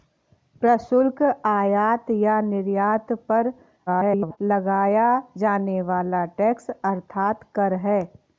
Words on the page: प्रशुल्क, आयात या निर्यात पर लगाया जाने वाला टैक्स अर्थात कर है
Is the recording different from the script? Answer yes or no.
yes